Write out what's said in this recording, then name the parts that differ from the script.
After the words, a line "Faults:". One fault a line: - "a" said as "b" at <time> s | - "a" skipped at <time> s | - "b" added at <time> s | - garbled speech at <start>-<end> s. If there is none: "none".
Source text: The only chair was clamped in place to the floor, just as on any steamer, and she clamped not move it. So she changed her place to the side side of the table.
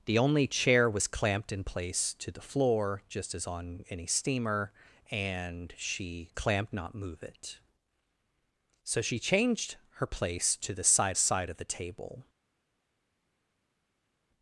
The only chair was clamped in place to the floor, just as on any steamer, and she clamped not move it. So she changed her place to the side side of the table.
Faults:
none